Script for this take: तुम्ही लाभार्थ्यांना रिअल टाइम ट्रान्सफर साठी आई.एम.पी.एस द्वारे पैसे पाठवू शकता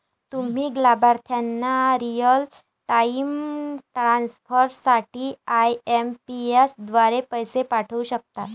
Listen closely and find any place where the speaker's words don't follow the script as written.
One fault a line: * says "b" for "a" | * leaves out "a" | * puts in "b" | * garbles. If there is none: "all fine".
all fine